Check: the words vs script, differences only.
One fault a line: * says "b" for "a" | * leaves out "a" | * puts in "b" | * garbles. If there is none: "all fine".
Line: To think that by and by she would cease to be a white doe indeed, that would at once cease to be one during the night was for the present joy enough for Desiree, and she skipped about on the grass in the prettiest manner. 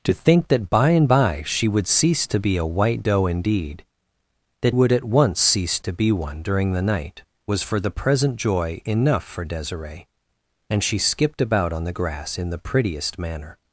all fine